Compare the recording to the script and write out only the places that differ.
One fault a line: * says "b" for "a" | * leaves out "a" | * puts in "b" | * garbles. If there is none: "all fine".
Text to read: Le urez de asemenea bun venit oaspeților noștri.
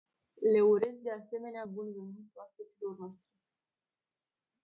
all fine